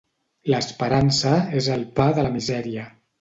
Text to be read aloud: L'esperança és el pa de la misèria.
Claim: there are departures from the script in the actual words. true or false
false